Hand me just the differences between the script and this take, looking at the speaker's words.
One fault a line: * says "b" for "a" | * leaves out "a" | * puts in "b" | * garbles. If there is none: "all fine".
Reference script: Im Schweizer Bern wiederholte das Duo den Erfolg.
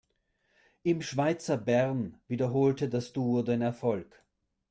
all fine